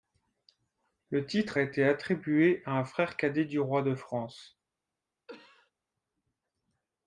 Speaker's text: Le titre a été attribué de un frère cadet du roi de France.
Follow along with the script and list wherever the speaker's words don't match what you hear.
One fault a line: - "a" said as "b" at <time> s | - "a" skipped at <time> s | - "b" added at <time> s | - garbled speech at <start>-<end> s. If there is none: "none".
- "de" said as "à" at 2.6 s